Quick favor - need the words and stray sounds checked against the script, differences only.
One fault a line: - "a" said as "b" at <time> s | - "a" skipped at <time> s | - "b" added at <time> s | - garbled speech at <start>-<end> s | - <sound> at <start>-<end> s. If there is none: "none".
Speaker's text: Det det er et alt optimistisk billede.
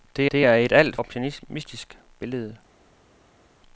none